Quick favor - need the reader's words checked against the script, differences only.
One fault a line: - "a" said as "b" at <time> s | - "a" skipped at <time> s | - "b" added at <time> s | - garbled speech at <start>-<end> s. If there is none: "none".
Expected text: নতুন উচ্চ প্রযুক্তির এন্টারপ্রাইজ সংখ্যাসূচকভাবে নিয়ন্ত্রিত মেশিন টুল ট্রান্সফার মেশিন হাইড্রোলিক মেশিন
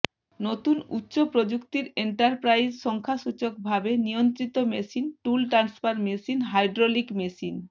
none